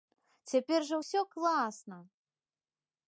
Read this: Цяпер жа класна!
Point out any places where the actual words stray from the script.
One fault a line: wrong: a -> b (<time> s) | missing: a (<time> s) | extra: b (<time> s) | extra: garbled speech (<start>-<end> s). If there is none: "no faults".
extra: ўсё (1.0 s)